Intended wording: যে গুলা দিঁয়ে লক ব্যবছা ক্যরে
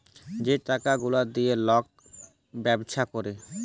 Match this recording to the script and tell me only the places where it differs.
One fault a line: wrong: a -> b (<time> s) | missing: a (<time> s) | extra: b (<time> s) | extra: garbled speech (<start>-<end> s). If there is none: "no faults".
extra: টাকা (0.7 s)